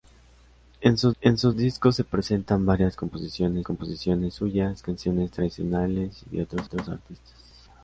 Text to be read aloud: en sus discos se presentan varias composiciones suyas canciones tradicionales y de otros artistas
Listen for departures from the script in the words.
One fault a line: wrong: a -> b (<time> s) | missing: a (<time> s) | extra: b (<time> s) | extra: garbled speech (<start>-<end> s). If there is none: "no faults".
extra: en sus (1.2 s)
extra: composiciones (3.6 s)
extra: otros (6.6 s)